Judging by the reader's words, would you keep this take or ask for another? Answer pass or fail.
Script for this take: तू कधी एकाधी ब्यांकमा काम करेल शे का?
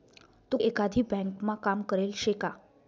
fail